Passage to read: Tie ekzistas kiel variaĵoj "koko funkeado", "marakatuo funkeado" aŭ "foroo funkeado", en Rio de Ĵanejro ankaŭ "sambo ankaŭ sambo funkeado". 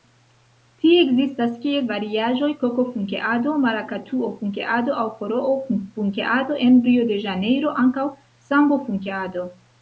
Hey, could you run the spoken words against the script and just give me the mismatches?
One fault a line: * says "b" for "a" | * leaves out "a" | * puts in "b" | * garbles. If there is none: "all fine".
* leaves out "ankaŭ sambo"